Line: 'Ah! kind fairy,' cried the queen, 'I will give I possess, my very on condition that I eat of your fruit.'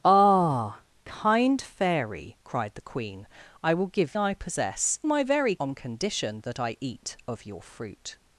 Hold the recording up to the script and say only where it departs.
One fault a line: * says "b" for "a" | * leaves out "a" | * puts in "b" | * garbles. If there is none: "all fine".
all fine